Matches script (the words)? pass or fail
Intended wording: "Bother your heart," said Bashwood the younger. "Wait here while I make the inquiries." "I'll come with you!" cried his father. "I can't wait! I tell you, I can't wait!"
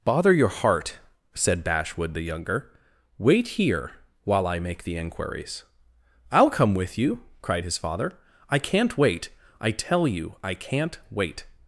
pass